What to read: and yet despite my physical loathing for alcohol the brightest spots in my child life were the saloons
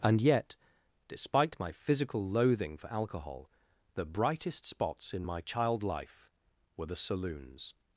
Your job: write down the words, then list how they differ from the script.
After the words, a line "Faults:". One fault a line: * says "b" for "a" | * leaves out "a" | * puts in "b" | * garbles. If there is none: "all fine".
and yet despite my physical loathing for alcohol the brightest spots in my child life were the saloons
Faults:
all fine